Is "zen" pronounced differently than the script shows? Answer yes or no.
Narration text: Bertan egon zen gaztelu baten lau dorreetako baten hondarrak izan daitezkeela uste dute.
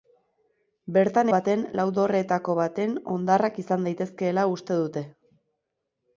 yes